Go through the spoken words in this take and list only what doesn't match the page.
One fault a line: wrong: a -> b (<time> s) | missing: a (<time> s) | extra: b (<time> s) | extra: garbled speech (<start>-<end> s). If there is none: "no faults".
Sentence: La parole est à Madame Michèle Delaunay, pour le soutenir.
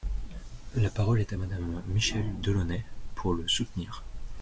no faults